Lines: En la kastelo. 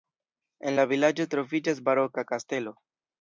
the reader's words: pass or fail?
fail